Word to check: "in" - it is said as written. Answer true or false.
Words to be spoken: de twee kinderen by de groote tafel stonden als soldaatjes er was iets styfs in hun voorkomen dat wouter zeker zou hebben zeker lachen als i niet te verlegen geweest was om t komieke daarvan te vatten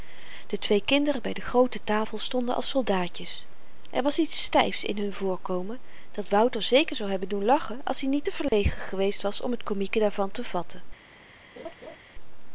true